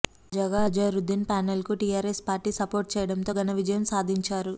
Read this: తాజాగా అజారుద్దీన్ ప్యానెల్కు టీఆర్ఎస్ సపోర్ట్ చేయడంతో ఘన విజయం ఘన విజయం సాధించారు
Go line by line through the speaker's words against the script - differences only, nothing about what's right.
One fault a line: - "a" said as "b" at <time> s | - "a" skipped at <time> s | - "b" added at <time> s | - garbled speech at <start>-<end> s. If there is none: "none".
- "పార్టీ" added at 2.3 s
- "ఘన విజయం" skipped at 3.9 s